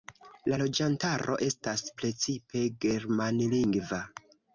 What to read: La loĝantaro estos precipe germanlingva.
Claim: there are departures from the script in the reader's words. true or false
true